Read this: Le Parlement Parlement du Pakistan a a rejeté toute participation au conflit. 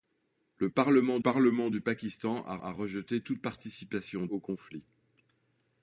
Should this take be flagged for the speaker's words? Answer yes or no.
no